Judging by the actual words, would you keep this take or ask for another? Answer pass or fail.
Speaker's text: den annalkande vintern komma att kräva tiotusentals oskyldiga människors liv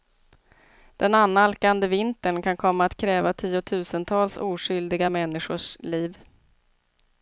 fail